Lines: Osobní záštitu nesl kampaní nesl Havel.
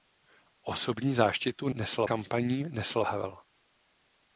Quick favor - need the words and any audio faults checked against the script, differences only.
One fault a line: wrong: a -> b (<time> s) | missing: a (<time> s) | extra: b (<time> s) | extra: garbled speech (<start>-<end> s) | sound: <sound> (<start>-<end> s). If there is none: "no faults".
no faults